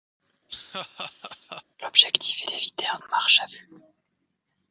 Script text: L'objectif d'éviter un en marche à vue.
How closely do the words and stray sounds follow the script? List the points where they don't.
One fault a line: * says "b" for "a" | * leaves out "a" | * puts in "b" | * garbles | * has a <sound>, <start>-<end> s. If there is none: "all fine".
* has a laugh, 0.5-1.6 s